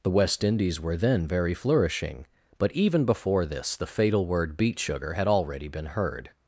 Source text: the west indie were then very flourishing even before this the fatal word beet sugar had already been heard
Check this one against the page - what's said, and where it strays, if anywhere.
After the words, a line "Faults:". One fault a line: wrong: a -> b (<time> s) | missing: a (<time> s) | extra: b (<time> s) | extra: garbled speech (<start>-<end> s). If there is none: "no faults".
the west indies were then very flourishing but even before this the fatal word beet sugar had already been heard
Faults:
wrong: indie -> indies (0.4 s)
extra: but (2.6 s)